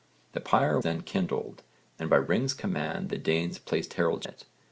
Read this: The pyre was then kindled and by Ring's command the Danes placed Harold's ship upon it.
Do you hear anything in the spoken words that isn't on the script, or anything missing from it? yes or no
yes